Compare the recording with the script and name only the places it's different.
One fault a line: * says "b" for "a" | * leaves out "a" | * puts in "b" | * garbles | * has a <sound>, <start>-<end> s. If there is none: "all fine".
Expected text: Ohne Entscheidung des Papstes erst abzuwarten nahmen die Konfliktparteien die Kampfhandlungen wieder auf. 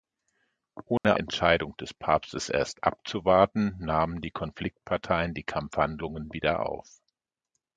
* has a dropout, 1.0-1.0 s